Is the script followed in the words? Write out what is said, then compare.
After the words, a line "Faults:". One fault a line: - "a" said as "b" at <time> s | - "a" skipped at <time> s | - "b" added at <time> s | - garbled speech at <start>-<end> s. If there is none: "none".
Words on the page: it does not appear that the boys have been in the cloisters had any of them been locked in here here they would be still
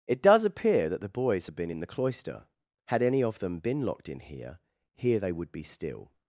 it does appear that the boys have been in the cloister had any of them been locked in here here they would be still
Faults:
- "not" skipped at 0.5 s
- "cloisters" said as "cloister" at 1.9 s